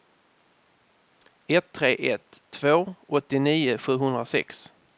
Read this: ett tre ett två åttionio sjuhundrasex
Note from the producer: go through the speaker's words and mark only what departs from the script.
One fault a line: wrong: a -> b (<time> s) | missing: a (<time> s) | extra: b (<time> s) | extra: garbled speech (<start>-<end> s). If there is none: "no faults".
no faults